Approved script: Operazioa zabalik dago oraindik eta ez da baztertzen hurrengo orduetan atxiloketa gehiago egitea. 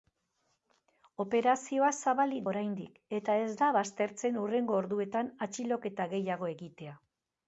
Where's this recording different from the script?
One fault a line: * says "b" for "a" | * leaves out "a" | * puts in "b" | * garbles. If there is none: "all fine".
* leaves out "dago"